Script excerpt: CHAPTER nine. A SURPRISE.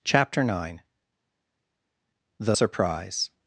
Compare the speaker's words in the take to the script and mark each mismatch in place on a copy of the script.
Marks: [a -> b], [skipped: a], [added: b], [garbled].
CHAPTER nine. [A -> THE] SURPRISE.